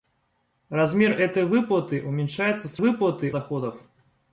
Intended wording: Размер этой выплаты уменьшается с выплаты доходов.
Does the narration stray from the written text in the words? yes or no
no